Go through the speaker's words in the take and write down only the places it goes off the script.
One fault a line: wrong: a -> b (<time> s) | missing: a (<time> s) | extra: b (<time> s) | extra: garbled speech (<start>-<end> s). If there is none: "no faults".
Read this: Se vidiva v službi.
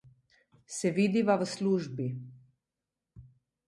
no faults